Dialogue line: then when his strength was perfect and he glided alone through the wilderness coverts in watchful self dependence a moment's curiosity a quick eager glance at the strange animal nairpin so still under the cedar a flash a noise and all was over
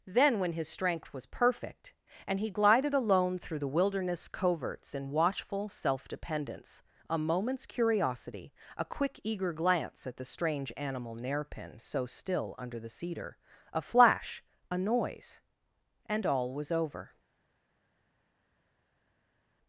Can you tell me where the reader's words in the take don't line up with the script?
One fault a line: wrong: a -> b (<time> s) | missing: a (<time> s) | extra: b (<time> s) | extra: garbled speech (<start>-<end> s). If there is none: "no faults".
no faults